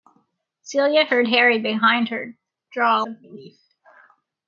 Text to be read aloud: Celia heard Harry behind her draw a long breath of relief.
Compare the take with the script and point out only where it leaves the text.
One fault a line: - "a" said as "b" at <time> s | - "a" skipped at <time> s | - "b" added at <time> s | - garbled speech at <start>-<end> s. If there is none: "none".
- "long breath" skipped at 3.1 s